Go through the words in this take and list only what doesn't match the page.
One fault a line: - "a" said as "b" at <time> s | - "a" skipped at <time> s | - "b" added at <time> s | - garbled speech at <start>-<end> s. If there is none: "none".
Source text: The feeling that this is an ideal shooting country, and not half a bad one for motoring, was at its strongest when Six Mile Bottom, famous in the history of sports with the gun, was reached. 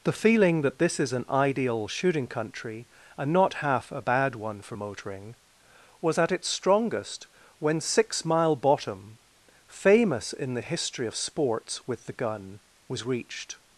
none